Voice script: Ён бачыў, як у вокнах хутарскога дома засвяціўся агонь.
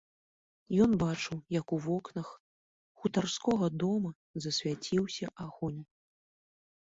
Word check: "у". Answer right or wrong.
right